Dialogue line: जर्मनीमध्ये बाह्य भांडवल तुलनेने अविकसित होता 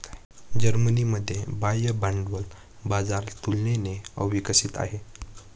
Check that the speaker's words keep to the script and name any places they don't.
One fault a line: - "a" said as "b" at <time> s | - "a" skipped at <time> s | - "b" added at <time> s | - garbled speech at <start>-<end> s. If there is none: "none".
- "बाजार" added at 2.8 s
- "होता" said as "आहे" at 4.8 s